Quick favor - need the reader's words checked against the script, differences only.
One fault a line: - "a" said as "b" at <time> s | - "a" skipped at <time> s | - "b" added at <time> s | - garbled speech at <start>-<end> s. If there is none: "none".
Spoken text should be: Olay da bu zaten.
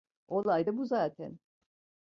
none